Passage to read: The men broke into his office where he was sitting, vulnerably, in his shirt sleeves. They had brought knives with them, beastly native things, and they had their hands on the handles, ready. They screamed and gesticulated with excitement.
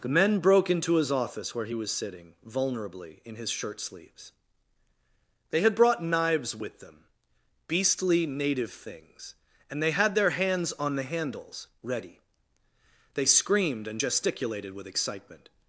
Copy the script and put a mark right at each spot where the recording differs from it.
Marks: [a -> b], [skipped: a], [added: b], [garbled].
The men broke into his office where he was sitting, vulnerably, in his shirt sleeves. They had brought knives with them, beastly native things, and they had their hands on the handles, ready. They screamed and gesticulated with excitement.